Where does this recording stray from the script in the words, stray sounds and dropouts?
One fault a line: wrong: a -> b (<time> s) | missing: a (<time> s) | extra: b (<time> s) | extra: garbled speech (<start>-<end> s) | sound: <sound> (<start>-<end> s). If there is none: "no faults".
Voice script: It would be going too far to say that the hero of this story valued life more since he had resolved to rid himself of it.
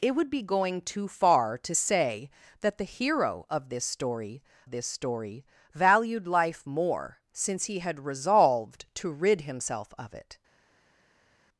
extra: this story (4.7 s)